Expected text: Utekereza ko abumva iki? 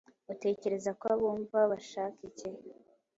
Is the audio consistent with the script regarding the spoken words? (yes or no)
no